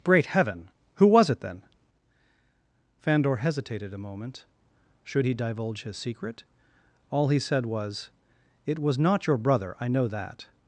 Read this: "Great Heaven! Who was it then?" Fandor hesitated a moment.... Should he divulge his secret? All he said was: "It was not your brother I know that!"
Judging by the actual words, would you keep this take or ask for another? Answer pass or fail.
pass